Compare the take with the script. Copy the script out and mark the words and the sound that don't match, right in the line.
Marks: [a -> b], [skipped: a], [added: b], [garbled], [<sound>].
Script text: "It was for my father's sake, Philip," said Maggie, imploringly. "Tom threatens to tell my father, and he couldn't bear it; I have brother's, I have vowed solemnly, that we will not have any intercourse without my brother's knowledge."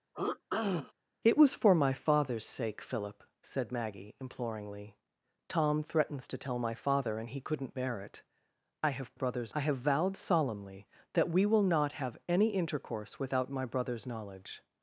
[throat clearing] "It was for my father's sake, Philip," said Maggie, imploringly. "Tom threatens to tell my father, and he couldn't bear it; I have brother's, I have vowed solemnly, that we will not have any intercourse without my brother's knowledge."